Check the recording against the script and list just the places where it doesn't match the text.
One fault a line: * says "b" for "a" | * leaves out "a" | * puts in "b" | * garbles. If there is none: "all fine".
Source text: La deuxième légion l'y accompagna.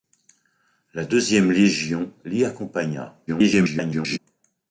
* garbles